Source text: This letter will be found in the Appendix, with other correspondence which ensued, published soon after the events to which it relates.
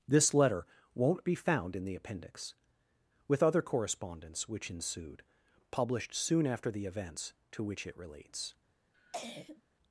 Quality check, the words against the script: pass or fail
fail